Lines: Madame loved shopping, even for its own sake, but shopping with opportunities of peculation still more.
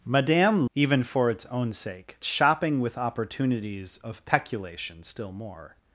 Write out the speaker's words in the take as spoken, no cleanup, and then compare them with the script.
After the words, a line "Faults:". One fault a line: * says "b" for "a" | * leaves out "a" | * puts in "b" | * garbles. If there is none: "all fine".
Madame even for its own sake, shopping with opportunities of peculation still more.
Faults:
* leaves out "loved shopping"
* leaves out "but"